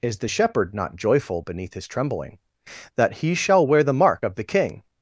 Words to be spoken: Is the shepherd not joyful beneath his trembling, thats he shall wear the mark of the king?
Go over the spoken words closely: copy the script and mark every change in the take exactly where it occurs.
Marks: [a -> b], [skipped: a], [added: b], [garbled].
Is the shepherd not joyful beneath his trembling, [thats -> that] he shall wear the mark of the king?